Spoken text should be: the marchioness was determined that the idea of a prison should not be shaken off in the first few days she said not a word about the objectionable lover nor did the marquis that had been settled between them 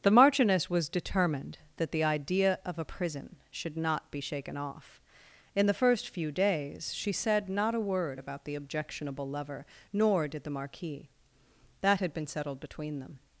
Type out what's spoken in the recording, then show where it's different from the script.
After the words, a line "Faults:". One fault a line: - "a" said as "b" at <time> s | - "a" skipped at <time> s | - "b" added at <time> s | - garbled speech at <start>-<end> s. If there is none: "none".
the marchioness was determined that the idea of a prison should not be shaken off in the first few days she said not a word about the objectionable lover nor did the marquis that had been settled between them
Faults:
none